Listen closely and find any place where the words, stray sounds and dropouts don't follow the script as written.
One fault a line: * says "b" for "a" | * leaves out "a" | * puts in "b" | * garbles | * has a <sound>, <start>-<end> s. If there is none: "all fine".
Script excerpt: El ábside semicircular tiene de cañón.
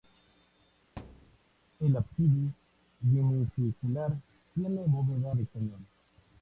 * has a thud, 1.0-1.4 s
* puts in "bóveda"